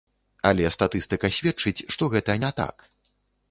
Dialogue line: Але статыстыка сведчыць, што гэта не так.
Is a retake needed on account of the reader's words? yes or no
no